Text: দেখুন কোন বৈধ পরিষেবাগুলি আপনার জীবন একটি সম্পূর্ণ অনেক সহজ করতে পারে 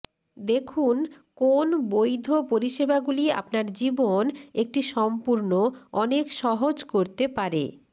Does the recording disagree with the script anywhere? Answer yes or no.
no